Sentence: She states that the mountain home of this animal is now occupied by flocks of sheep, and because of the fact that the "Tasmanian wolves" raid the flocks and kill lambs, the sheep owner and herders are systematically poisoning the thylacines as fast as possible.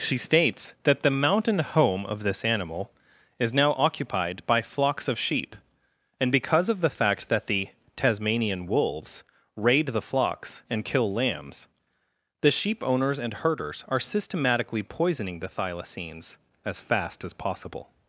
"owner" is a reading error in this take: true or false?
true